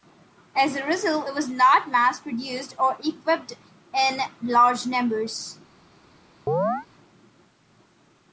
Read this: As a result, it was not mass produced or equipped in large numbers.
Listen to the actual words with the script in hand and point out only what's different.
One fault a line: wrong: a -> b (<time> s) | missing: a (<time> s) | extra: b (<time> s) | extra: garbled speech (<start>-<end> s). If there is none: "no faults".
no faults